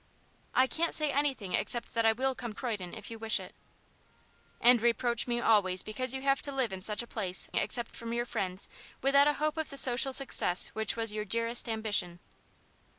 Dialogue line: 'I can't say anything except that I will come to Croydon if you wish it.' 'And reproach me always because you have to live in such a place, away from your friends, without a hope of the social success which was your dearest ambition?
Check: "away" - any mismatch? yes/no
yes